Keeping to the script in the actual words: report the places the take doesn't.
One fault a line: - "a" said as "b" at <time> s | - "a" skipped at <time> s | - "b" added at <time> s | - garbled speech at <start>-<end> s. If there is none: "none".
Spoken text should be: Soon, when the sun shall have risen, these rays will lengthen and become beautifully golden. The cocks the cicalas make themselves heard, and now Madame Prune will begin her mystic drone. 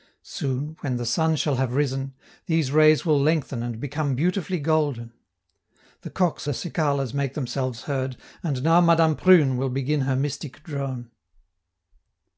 none